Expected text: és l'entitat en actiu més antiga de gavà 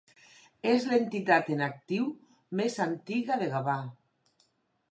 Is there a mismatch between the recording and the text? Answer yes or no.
no